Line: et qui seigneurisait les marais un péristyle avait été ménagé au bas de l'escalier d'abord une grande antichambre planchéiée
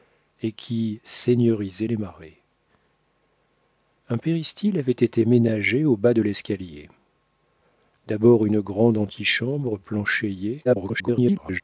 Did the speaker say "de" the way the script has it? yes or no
yes